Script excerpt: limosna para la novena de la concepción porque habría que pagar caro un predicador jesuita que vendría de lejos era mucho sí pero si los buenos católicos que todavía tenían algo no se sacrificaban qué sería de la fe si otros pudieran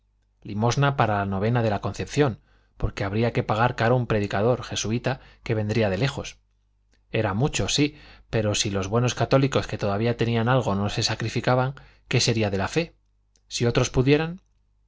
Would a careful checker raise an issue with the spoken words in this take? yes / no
no